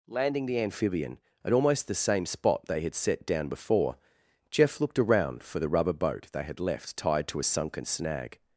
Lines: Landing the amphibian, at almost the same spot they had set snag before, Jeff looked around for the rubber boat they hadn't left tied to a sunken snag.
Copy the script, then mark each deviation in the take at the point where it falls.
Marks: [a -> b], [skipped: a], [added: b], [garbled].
Landing the amphibian, at almost the same spot they had set [snag -> down] before, Jeff looked around for the rubber boat they [hadn't -> had] left tied to a sunken snag.